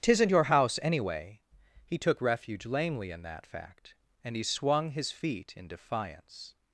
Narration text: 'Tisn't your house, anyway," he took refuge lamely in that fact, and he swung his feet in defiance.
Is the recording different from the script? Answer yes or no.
no